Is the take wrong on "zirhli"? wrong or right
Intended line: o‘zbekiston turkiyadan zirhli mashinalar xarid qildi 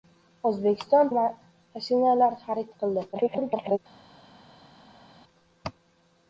wrong